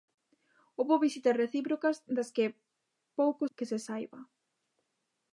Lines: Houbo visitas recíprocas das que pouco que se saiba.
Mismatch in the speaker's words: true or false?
false